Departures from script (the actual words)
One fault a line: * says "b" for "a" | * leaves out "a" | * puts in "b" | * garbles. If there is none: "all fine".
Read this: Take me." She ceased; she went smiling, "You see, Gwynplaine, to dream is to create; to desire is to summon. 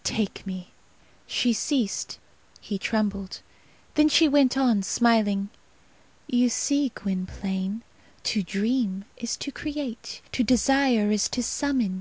* puts in "he trembled Then"
* puts in "on"